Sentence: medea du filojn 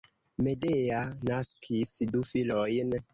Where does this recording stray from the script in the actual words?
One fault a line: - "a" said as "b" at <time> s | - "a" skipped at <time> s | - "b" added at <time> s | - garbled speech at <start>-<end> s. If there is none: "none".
- "naskis" added at 1.3 s